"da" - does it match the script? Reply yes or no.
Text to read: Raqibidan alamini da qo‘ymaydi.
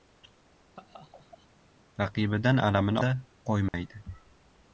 yes